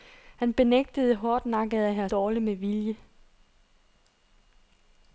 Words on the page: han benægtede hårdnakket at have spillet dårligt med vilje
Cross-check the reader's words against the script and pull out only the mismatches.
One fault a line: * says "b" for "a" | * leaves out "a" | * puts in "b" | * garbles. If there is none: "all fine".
* leaves out "spillet"